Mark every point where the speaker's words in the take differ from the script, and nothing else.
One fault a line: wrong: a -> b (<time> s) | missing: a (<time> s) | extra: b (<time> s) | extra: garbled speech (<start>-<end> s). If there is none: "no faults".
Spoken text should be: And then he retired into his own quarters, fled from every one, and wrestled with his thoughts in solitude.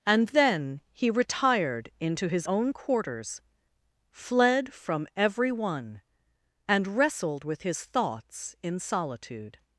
no faults